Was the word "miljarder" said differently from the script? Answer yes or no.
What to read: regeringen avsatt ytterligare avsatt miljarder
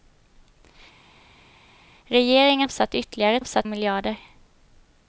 no